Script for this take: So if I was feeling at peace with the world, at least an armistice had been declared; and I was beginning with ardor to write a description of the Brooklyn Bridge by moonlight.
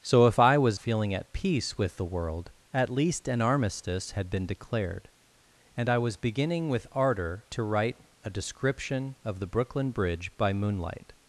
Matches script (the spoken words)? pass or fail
pass